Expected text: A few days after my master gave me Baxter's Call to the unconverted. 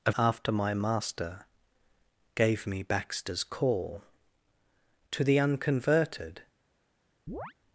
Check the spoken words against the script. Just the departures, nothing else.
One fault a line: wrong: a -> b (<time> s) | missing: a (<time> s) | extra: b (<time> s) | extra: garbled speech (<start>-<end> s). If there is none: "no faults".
missing: few days (0.1 s)